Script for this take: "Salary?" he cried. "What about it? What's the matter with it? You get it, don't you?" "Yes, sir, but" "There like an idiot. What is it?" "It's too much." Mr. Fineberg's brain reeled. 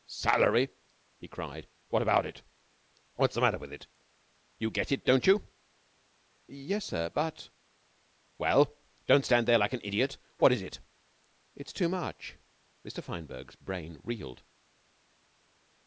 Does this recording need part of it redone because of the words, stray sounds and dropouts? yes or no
yes